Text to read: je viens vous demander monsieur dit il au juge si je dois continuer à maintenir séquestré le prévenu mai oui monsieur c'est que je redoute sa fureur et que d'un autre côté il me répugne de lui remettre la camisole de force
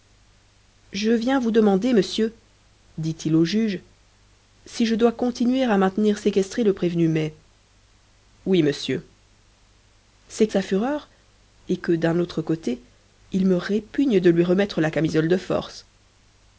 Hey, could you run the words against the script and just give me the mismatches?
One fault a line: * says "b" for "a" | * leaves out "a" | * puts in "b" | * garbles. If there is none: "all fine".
* leaves out "que je redoute"